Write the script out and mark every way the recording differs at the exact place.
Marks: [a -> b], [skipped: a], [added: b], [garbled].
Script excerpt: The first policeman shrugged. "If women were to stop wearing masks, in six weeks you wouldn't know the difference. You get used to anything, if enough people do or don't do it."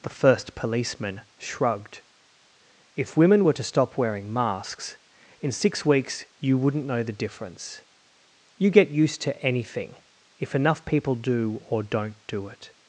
The first policeman shrugged. "If women were to stop wearing masks, in six weeks you wouldn't know the difference. You get used to anything, if enough people do or don't do it."